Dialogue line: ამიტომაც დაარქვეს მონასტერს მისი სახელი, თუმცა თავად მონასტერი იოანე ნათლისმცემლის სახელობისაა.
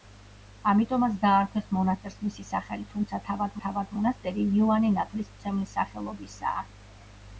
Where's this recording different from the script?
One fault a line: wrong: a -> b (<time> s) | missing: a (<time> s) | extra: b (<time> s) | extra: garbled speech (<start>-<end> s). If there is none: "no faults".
extra: თავად (3.6 s)